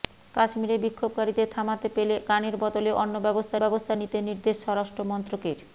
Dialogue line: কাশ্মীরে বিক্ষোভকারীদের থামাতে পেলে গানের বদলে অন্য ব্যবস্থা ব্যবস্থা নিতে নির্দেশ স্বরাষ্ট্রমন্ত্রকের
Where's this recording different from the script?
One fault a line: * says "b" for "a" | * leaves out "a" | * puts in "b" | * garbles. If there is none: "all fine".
all fine